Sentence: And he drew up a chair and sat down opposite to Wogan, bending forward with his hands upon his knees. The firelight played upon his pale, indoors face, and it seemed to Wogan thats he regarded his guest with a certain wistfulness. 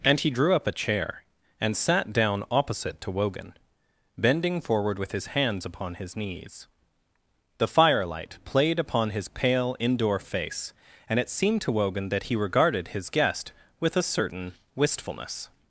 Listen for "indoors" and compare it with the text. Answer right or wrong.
wrong